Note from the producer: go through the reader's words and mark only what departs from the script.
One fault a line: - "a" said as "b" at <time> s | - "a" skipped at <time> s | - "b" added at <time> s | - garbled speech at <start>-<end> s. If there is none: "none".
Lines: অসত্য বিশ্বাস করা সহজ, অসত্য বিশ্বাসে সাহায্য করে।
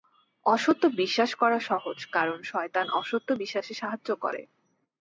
- "কারণ শয়তান" added at 2.1 s